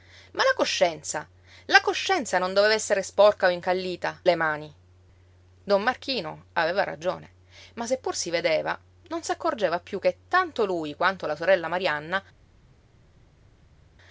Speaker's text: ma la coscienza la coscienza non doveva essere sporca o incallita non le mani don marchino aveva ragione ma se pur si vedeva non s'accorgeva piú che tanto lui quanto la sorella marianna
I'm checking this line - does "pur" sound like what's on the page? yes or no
yes